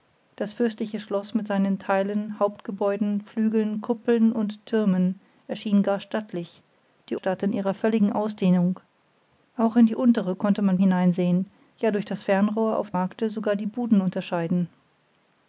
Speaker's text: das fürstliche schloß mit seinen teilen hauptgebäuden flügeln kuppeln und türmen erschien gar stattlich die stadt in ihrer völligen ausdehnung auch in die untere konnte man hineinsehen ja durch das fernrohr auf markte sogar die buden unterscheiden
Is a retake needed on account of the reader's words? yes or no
no